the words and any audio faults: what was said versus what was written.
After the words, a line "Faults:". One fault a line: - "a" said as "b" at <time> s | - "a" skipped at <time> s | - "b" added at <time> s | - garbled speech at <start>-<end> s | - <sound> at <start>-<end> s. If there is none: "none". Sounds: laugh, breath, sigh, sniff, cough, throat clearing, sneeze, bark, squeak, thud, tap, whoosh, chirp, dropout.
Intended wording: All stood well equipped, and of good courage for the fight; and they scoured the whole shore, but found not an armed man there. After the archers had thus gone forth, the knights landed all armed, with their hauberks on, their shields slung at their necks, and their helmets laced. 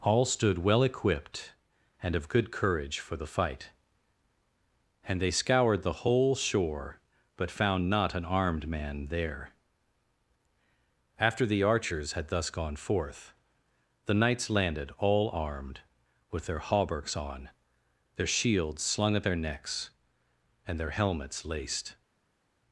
All stood well equipped, and of good courage for the fight; and they scoured the whole shore, but found not an armed man there. After the archers had thus gone forth, the knights landed all armed, with their hauberks on, their shields slung at their necks, and their helmets laced.
Faults:
none